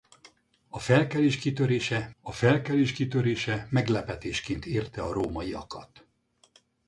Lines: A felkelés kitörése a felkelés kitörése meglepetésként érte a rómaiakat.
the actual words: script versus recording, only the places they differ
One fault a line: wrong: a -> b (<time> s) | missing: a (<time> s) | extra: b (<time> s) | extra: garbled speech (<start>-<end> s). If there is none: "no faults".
no faults